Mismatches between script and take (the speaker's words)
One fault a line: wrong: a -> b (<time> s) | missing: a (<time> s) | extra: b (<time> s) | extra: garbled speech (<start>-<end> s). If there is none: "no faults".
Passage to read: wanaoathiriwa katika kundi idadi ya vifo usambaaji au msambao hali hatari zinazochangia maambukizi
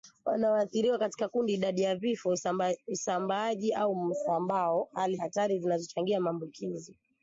no faults